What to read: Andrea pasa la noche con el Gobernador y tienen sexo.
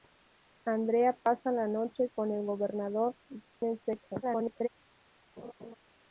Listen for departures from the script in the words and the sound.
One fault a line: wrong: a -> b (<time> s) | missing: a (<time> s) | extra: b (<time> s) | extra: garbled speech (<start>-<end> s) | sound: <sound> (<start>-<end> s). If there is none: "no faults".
sound: dropout (3.5-3.6 s)
extra: garbled speech (4.2-4.7 s)
sound: laugh (5.4-5.7 s)